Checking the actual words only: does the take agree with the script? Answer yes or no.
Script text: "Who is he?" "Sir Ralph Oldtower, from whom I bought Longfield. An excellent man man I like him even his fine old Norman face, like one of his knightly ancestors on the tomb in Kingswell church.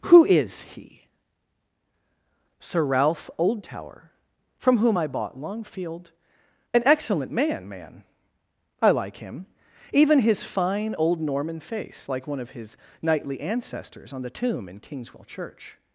yes